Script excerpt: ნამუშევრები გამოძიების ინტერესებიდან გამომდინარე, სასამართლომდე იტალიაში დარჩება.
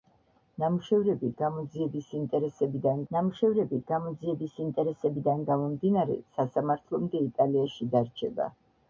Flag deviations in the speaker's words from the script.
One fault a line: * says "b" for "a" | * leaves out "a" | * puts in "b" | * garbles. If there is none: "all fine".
* puts in "ნამუშევრები გამოძიების ინტერესებიდან"